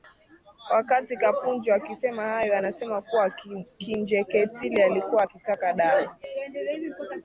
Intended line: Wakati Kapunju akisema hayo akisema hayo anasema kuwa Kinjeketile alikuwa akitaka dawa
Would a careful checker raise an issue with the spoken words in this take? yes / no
yes